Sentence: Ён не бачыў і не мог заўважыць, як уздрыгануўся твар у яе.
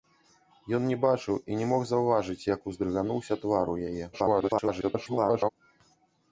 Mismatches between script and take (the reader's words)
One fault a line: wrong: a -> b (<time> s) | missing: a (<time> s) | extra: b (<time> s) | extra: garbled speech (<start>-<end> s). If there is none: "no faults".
extra: garbled speech (4.1-5.5 s)